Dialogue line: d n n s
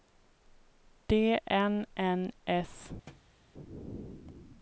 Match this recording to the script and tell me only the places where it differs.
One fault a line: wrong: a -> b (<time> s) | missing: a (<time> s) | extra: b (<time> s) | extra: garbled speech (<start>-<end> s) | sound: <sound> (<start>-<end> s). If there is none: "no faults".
sound: thud (3.1-3.4 s)